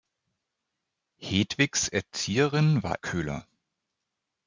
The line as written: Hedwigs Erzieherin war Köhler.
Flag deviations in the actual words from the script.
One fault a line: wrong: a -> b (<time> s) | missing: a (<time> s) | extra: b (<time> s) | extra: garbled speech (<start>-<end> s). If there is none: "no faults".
no faults